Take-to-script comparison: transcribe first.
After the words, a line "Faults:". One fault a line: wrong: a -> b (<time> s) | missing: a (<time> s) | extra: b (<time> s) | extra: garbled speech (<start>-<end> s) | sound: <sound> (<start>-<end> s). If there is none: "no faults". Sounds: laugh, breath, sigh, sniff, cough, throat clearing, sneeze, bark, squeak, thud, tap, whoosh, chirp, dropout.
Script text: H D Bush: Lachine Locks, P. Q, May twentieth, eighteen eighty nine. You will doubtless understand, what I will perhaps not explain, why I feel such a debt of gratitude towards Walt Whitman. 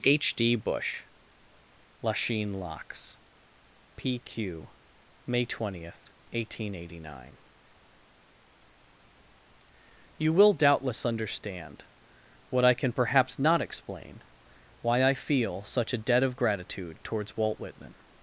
H D Bush: Lachine Locks, P. Q, May twentieth, eighteen eighty nine. You will doubtless understand, what I can perhaps not explain, why I feel such a debt of gratitude towards Walt Whitman.
Faults:
wrong: will -> can (12.7 s)